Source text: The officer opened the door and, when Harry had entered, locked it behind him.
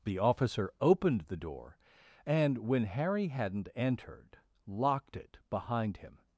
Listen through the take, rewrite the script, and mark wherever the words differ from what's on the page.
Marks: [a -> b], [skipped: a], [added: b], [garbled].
The officer opened the door and, when Harry [had -> hadn't] entered, locked it behind him.